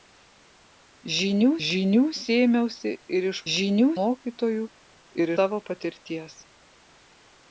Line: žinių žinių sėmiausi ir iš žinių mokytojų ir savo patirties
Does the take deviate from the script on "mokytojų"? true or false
false